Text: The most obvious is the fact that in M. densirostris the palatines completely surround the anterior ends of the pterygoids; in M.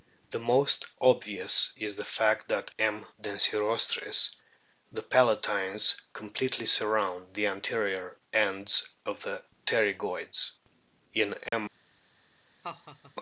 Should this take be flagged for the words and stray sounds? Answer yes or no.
yes